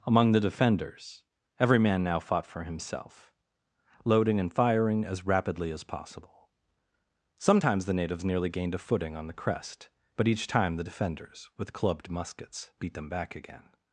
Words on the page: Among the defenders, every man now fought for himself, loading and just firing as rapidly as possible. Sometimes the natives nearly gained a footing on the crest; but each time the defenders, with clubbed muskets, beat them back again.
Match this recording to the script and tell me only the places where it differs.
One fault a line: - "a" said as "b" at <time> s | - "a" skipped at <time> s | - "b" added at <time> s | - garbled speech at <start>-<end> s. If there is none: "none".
- "just" skipped at 4.5 s